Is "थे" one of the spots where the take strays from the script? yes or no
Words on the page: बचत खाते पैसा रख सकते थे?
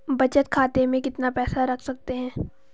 yes